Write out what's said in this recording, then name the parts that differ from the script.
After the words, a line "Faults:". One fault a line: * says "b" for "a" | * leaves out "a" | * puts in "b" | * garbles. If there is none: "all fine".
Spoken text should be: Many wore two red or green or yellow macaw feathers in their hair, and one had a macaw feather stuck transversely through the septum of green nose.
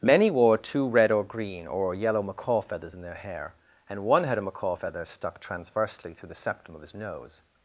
Many wore two red or green or yellow macaw feathers in their hair, and one had a macaw feather stuck transversely through the septum of his nose.
Faults:
* says "his" for "green"